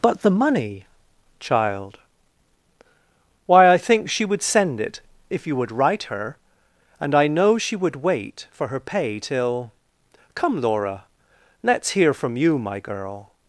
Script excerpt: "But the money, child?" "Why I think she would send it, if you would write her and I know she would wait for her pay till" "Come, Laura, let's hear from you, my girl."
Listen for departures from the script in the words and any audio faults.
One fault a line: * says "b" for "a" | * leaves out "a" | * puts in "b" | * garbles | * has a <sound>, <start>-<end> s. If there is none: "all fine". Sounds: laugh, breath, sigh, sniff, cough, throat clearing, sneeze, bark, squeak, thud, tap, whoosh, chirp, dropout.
all fine